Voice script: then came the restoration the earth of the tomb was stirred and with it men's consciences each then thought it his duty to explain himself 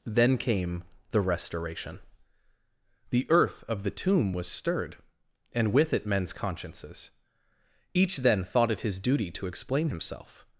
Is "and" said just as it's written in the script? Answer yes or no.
yes